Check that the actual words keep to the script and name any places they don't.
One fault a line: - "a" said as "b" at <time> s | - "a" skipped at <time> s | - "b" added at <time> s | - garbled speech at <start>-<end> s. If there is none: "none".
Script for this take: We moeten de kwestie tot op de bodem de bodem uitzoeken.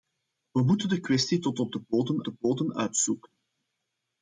none